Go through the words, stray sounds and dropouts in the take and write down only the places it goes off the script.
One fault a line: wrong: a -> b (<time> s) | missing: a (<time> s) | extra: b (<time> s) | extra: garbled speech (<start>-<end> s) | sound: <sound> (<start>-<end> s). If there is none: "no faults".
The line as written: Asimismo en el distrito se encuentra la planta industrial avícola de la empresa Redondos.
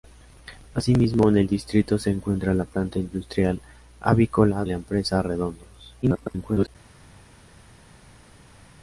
missing: de (4.7 s)
extra: garbled speech (6.0-6.7 s)